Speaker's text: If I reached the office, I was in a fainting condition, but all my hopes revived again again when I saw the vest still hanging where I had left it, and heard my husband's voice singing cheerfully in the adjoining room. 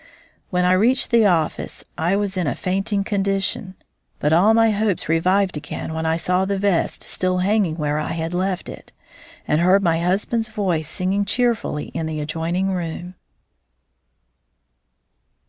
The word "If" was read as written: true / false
false